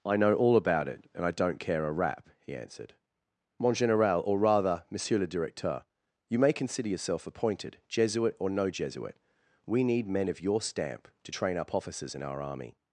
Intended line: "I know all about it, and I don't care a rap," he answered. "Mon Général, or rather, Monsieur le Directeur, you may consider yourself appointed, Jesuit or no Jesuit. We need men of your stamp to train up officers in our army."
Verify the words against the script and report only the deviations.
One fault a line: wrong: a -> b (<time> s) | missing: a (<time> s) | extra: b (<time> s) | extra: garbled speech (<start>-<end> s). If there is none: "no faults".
no faults